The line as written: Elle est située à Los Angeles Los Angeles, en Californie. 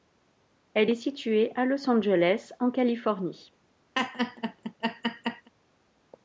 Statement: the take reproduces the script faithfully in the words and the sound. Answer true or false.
false